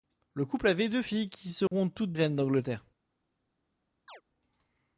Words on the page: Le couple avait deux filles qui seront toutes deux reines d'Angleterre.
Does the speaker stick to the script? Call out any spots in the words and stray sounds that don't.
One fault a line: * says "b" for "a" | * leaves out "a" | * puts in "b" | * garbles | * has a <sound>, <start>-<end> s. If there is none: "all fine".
* has a dropout, 1.7-1.7 s
* leaves out "deux"
* has a chirp, 4.1-4.2 s